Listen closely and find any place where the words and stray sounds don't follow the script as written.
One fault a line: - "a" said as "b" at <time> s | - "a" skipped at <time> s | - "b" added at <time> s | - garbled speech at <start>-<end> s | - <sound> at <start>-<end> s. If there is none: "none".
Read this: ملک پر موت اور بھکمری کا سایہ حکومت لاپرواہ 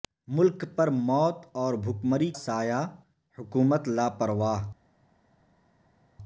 - "کا" skipped at 2.3 s